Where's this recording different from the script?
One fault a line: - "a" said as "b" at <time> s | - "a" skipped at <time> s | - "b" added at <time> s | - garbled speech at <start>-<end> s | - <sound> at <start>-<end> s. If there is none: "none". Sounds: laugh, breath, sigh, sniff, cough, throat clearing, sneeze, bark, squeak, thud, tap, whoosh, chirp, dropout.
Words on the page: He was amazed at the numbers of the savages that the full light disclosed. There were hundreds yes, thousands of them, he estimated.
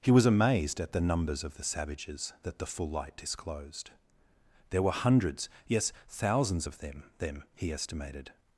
- "them" added at 7.2 s